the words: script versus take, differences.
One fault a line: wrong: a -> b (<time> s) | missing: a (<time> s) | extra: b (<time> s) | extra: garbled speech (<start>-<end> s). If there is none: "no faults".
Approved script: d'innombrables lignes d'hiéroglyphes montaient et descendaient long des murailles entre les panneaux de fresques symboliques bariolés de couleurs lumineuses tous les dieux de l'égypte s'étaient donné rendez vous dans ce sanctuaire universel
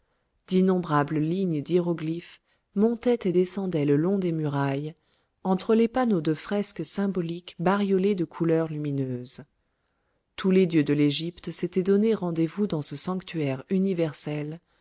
extra: le (3.8 s)